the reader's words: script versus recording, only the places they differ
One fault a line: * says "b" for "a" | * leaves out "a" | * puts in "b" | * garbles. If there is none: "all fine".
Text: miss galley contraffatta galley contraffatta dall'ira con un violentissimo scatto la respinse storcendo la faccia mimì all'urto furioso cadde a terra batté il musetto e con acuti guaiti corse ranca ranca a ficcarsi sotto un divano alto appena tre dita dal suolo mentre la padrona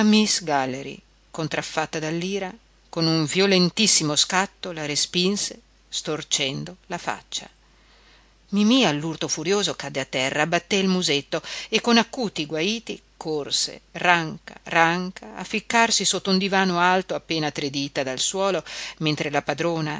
* leaves out "galley contraffatta"